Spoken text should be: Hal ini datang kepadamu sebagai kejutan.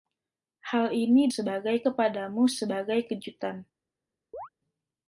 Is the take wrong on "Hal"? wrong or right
right